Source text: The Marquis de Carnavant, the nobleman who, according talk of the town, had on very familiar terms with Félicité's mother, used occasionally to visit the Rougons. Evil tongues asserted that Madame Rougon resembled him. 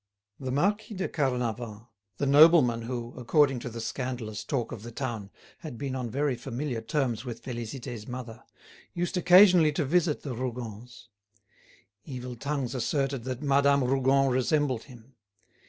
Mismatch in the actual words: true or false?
true